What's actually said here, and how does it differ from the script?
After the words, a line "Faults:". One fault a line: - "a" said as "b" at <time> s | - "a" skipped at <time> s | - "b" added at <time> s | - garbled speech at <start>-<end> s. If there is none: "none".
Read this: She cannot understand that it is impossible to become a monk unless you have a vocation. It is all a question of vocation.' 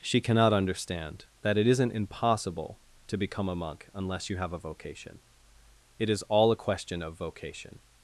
She cannot understand that it isn't impossible to become a monk unless you have a vocation. It is all a question of vocation.'
Faults:
- "is" said as "isn't" at 1.7 s